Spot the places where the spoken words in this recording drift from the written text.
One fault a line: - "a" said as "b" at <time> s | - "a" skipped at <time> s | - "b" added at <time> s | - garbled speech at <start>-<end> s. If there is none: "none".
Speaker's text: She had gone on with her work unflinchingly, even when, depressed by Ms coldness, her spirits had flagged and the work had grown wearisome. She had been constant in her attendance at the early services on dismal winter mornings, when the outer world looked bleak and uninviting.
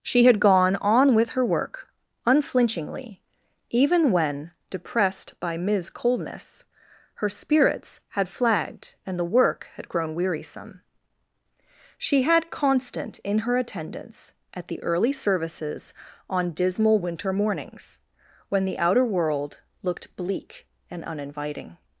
- "been" skipped at 12.5 s